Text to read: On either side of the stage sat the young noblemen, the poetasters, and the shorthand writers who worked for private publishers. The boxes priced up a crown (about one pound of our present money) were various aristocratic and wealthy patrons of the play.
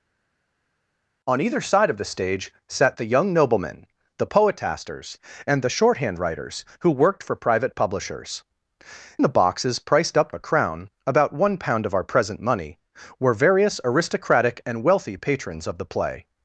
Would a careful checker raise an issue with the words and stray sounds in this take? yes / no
no